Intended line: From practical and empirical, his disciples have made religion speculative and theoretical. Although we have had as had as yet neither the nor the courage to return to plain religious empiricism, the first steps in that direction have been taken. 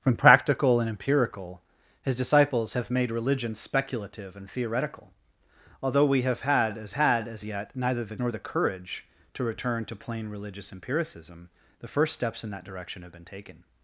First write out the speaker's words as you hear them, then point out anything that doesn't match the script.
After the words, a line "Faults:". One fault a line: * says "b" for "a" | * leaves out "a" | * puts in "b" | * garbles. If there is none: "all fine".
From practical and empirical, his disciples have made religion speculative and theoretical. Although we have had as had as yet neither the nor the courage to return to plain religious empiricism, the first steps in that direction have been taken.
Faults:
all fine